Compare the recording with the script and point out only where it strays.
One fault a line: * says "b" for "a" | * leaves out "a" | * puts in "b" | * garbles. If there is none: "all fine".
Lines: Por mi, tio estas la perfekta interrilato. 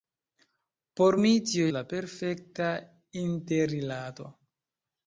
* leaves out "estas"